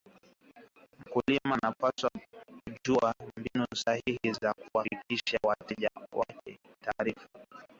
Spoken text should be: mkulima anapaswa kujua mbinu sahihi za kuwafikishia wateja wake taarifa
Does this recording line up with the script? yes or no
yes